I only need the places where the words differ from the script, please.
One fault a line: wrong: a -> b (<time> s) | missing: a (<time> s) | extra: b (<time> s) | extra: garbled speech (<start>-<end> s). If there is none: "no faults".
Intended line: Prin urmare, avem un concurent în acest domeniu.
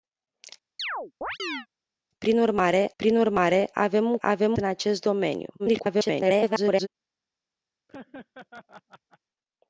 extra: prin urmare (3.0 s)
wrong: concurent -> avem (4.2 s)
extra: garbled speech (5.6-6.9 s)